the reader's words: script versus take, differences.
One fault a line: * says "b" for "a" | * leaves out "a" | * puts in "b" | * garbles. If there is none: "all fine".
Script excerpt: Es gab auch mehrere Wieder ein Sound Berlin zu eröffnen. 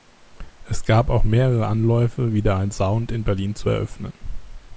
* puts in "Anläufe"
* puts in "in"